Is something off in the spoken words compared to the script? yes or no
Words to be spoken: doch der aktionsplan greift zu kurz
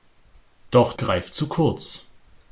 yes